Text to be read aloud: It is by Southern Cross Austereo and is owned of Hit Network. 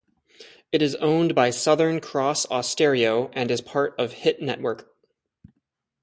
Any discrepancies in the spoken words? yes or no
yes